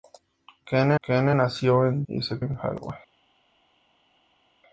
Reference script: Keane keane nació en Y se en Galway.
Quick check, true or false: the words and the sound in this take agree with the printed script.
true